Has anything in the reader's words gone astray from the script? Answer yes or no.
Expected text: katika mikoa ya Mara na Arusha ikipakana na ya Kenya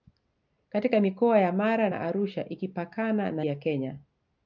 no